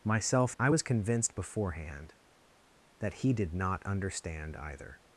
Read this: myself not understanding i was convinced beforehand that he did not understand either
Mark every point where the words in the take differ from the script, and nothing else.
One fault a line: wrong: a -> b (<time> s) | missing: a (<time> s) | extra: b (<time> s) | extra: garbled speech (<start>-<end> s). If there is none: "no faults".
missing: not understanding (0.6 s)